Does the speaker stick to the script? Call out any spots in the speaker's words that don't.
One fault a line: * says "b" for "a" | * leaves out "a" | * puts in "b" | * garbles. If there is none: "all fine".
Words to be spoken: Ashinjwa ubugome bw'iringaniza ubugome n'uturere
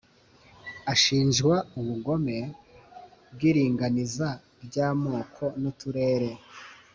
* says "ry'amoko" for "ubugome"